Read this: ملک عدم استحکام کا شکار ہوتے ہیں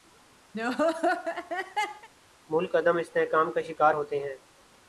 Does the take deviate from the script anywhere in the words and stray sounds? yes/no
yes